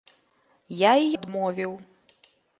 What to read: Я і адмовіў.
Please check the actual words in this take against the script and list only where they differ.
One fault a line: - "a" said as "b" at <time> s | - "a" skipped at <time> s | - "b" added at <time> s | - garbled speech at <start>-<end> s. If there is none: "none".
none